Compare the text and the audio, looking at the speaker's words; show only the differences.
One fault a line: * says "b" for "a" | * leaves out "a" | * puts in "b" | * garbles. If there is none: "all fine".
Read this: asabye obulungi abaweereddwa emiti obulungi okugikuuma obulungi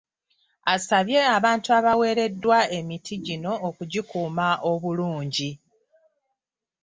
* says "abantu" for "obulungi"
* says "gino" for "obulungi"